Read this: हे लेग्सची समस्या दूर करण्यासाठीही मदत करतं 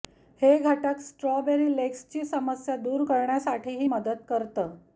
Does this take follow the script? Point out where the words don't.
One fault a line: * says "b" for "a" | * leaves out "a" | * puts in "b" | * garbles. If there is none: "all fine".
* puts in "घटक स्ट्रॉबेरी"